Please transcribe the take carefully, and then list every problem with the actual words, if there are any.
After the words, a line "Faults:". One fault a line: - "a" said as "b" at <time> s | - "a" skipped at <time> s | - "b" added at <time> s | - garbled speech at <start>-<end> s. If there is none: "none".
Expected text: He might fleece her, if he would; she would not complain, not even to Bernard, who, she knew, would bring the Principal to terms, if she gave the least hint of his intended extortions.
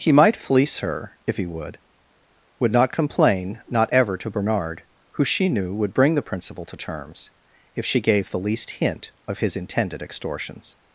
He might fleece her, if he would; would not complain, not ever to Bernard, who, she knew, would bring the Principal to terms, if she gave the least hint of his intended extortions.
Faults:
- "she" skipped at 1.8 s
- "even" said as "ever" at 3.9 s